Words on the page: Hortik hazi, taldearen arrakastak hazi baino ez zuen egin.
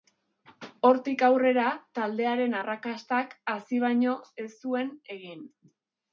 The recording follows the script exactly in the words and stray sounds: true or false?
false